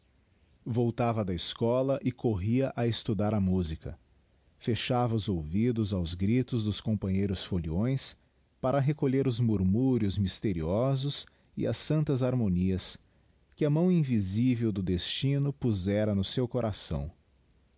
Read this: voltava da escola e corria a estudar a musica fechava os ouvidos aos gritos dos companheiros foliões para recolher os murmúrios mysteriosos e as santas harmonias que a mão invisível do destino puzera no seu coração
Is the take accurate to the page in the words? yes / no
yes